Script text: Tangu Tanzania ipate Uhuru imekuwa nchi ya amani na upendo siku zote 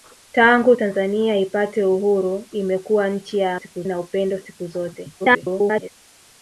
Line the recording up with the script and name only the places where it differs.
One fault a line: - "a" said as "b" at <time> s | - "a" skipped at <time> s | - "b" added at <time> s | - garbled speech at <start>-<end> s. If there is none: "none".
- "amani" said as "siku" at 3.5 s
- garbled speech at 5.2-5.9 s